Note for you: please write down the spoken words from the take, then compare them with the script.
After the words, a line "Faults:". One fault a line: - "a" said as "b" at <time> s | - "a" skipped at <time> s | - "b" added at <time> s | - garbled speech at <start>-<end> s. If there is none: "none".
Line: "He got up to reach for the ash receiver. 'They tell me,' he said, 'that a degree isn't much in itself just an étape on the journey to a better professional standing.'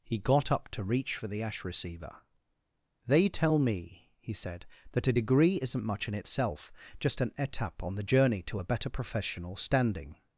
"He got up to reach for the ash receiver. 'They tell me,' he said, 'that a degree isn't much in itself just an étape on the journey to a better professional standing.'
Faults:
none